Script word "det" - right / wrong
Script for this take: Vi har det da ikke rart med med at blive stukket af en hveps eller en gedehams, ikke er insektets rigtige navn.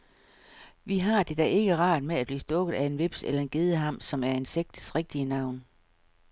right